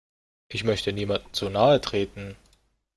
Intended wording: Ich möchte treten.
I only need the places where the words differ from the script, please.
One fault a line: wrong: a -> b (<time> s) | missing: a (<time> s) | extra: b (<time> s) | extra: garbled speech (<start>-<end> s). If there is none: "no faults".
extra: niemandem zu nahe (0.9 s)